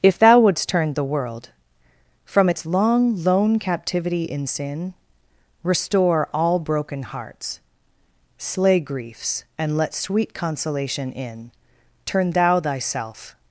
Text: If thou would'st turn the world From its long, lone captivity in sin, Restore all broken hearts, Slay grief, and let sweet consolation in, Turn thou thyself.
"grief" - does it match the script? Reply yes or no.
no